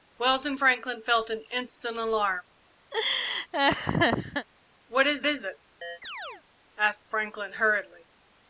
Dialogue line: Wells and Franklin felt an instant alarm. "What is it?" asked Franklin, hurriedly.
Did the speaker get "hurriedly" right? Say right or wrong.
right